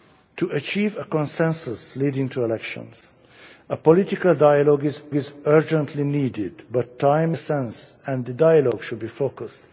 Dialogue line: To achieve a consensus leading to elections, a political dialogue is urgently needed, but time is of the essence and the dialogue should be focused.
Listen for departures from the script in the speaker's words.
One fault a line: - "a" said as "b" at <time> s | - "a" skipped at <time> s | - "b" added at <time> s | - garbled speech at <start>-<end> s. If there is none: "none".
- "is" added at 5.1 s
- "is of the" skipped at 7.4 s